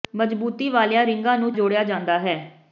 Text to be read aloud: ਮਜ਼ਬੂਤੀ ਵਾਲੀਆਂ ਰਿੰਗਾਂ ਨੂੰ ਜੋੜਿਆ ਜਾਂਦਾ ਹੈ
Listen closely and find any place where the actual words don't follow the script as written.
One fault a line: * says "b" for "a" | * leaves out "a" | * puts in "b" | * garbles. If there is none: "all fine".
all fine